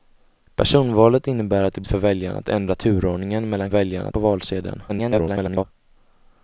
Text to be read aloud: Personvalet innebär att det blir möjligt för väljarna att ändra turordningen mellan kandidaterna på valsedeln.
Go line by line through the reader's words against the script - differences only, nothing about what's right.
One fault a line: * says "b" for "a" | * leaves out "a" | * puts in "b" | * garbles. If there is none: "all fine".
* leaves out "blir möjligt"
* says "väljarna" for "kandidaterna"
* garbles